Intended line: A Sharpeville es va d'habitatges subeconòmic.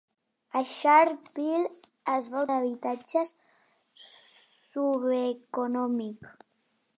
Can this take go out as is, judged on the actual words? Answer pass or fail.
pass